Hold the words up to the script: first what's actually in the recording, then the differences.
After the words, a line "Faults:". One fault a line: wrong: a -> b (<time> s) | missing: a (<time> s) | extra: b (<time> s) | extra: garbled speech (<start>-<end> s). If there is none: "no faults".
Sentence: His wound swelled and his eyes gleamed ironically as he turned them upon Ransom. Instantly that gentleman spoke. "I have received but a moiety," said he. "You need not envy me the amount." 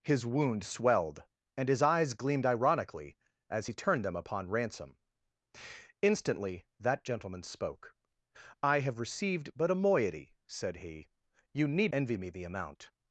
His wound swelled and his eyes gleamed ironically as he turned them upon Ransom. Instantly that gentleman spoke. "I have received but a moiety," said he. "You need envy me the amount."
Faults:
missing: not (11.9 s)